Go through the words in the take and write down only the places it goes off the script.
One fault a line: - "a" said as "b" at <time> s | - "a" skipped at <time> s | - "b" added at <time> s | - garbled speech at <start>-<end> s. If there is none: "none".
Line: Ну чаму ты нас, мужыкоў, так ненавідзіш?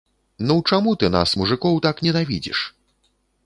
none